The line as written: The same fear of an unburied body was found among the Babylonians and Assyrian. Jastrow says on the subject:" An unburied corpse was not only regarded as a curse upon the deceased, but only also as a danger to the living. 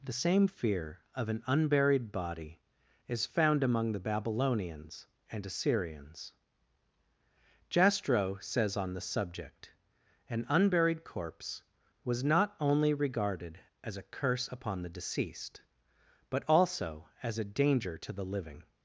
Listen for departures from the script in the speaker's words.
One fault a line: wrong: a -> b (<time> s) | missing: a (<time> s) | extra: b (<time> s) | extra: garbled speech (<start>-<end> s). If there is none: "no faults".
wrong: was -> is (3.1 s)
wrong: Assyrian -> Assyrians (5.4 s)
missing: only (16.4 s)